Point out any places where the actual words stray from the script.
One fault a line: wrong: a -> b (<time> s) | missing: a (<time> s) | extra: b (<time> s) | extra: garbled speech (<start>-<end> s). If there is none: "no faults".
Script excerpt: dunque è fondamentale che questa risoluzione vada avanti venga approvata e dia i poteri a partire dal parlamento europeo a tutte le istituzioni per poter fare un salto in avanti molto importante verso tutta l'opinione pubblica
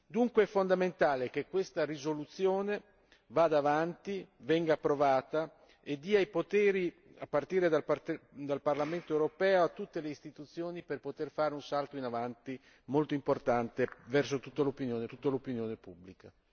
extra: tutta l'opinione (15.0 s)